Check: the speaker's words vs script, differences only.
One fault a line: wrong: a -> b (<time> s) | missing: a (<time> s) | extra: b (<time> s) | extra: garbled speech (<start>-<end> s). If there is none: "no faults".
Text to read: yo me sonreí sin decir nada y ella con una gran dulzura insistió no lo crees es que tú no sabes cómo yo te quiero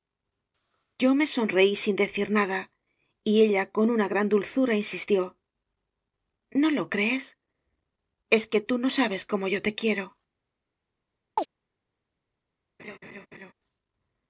no faults